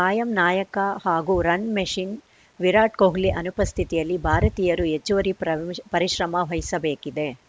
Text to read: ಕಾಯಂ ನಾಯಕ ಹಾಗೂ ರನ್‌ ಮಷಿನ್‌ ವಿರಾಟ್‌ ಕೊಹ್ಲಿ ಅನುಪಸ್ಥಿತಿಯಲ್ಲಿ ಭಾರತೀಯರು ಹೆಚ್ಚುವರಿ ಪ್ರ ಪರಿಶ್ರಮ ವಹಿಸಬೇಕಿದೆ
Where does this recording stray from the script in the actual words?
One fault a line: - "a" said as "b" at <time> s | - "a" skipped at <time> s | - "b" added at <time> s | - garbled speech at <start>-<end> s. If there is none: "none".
none